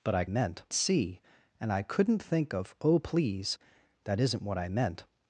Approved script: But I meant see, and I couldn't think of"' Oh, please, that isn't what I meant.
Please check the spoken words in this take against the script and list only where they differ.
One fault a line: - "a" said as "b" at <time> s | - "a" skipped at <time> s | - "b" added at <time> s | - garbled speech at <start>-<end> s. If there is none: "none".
none